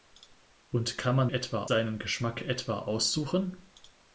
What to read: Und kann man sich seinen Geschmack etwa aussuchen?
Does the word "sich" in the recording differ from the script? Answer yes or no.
yes